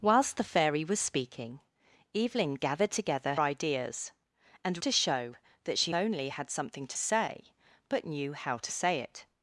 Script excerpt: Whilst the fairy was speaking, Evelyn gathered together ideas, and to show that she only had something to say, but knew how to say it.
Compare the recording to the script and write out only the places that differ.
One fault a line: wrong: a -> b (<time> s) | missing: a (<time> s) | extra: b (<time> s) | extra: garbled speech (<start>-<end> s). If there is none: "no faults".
no faults